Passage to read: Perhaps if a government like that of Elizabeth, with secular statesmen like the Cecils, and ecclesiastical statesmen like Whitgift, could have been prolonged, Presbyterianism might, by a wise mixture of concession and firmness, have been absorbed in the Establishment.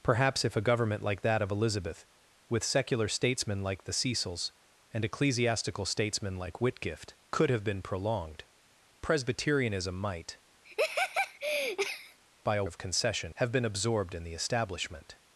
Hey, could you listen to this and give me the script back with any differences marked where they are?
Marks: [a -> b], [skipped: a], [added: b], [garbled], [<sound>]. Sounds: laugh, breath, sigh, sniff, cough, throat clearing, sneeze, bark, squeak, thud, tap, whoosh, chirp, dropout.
Perhaps if a government like that of Elizabeth, with secular statesmen like the Cecils, and ecclesiastical statesmen like Whitgift, could have been prolonged, Presbyterianism might, [laugh] by a [skipped: wise mixture] of concession [skipped: and firmness,] have been absorbed in the Establishment.